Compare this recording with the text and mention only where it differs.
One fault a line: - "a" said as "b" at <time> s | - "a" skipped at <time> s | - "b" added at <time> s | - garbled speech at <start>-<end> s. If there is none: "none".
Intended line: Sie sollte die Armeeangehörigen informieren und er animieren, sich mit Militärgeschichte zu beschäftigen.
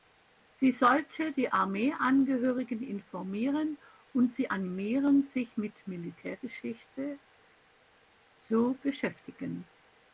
- "er" said as "sie" at 4.3 s